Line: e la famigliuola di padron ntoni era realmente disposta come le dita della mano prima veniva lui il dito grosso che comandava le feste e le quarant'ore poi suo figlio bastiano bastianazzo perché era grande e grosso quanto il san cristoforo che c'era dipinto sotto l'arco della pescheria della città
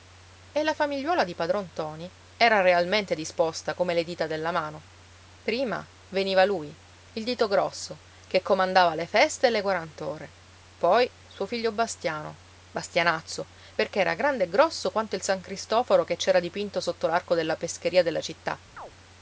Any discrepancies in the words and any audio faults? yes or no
yes